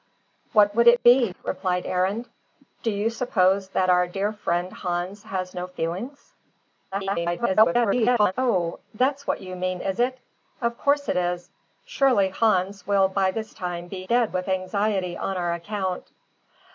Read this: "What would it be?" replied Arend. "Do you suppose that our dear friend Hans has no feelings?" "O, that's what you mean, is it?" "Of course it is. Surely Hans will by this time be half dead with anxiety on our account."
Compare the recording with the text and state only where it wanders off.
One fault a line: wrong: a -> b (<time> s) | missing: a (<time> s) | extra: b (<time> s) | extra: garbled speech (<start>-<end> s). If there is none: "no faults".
extra: garbled speech (6.9-8.3 s)
missing: half (14.0 s)